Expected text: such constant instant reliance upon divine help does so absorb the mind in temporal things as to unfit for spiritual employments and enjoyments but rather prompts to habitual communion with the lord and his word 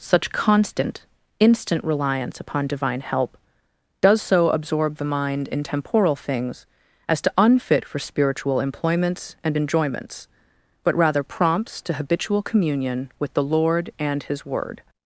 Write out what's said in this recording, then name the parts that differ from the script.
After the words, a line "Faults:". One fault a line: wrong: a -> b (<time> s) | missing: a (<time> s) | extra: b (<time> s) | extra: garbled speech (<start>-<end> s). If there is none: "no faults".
such constant instant reliance upon divine help does so absorb the mind in temporal things as to unfit for spiritual employments and enjoyments but rather prompts to habitual communion with the lord and his word
Faults:
no faults